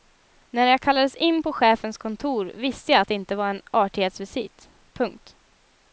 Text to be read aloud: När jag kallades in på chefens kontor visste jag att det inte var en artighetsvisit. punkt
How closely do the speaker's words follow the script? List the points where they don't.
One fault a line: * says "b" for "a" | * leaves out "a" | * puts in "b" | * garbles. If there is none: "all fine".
all fine